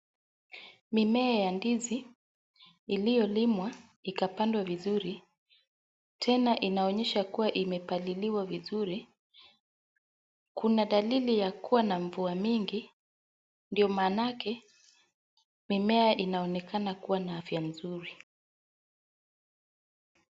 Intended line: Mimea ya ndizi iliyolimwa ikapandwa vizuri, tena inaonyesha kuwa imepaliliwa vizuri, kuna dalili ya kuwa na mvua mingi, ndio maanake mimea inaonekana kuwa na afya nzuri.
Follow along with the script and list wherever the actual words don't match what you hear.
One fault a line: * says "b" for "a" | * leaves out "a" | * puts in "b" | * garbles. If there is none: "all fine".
all fine